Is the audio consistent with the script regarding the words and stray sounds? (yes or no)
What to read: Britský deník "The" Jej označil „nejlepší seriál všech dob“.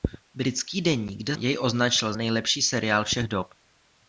yes